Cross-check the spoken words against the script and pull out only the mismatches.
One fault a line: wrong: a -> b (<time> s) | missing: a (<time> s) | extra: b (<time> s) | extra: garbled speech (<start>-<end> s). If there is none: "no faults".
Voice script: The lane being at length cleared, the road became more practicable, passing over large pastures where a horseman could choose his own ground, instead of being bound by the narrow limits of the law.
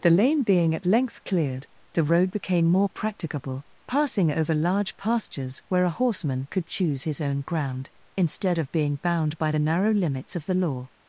no faults